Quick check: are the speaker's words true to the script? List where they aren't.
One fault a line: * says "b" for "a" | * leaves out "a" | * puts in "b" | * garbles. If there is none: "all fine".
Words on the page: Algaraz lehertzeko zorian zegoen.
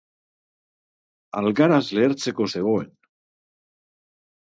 * leaves out "zorian"